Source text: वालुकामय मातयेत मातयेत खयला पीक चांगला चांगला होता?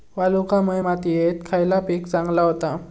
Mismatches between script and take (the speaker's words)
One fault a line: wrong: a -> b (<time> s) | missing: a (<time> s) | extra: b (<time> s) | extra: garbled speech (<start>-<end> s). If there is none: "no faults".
missing: मातयेत (1.4 s)
missing: चांगला (2.4 s)